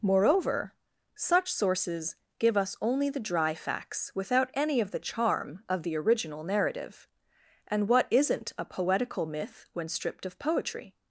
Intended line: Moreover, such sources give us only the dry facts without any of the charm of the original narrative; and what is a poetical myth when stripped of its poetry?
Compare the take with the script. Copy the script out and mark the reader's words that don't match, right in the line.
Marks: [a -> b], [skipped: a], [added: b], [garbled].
Moreover, such sources give us only the dry facts without any of the charm of the original narrative; and what [is -> isn't] a poetical myth when stripped of [skipped: its] poetry?